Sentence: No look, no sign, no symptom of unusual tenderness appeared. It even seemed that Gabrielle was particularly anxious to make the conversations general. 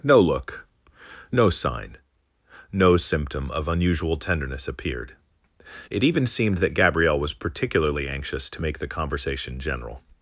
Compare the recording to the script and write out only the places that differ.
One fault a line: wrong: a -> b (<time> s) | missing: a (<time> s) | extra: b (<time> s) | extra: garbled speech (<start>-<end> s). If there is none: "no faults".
wrong: conversations -> conversation (8.9 s)